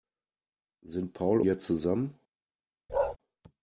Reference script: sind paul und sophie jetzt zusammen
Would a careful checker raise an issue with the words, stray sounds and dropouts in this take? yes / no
yes